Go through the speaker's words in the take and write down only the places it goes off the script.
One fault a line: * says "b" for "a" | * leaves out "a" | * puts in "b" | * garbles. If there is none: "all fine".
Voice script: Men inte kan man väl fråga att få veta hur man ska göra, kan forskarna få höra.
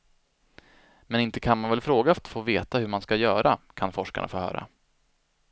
all fine